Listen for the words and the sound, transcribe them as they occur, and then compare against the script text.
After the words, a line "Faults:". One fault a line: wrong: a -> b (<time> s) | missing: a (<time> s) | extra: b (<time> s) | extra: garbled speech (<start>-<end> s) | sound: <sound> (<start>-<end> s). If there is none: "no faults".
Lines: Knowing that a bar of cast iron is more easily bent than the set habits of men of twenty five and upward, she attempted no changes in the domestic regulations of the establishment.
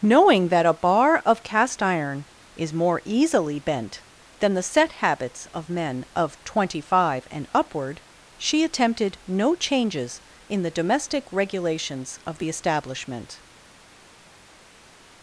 Knowing that a bar of cast iron is more easily bent than the set habits of men of twenty five and upward, she attempted no changes in the domestic regulations of the establishment.
Faults:
no faults